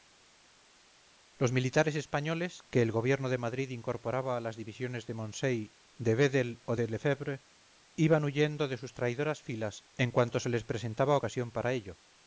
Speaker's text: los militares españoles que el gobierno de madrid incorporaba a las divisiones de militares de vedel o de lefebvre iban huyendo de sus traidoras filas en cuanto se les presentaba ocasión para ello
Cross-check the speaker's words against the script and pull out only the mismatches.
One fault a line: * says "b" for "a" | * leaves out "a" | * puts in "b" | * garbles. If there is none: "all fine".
* says "moncey" for "militares"